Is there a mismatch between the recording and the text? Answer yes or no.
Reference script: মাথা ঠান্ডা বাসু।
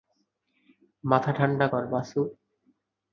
yes